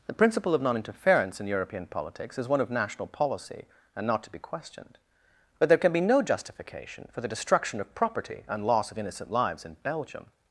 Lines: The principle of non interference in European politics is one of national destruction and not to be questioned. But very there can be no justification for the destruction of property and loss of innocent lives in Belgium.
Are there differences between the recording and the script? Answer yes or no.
yes